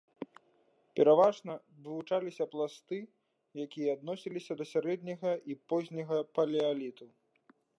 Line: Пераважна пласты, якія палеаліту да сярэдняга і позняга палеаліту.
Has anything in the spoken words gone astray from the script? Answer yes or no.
yes